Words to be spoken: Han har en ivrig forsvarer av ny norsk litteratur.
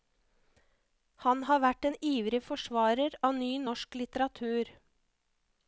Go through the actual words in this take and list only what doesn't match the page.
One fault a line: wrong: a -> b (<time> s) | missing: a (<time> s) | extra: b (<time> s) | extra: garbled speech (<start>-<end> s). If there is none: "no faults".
extra: vært (1.6 s)